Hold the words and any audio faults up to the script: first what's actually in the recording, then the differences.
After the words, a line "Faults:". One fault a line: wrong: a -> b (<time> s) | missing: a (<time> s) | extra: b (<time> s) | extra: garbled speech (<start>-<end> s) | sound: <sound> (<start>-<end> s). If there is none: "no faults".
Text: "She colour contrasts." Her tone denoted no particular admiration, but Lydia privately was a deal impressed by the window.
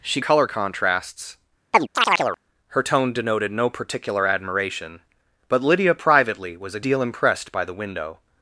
"She colour contrasts." Her tone denoted no particular admiration, but Lydia privately was a deal impressed by the window.
Faults:
sound: chirp (1.7-2.4 s)